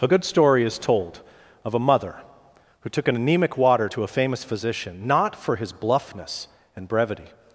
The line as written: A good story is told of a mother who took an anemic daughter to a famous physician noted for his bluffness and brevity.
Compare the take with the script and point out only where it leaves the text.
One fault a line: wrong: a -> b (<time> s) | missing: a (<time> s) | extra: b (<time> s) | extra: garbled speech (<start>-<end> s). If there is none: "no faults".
wrong: daughter -> water (3.6 s)
wrong: noted -> not (5.1 s)